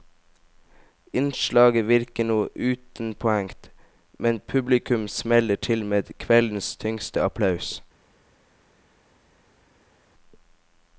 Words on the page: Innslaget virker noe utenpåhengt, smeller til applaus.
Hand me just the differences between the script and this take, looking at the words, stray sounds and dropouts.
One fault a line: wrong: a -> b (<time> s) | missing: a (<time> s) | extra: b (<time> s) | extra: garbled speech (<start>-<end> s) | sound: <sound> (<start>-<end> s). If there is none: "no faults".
extra: men publikum (4.2 s)
extra: med kveldens tyngste (5.8 s)